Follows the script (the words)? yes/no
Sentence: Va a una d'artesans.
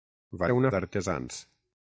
yes